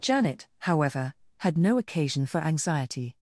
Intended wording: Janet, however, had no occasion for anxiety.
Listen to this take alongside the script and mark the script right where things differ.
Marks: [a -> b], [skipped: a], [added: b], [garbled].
Janet, however, had no occasion for anxiety.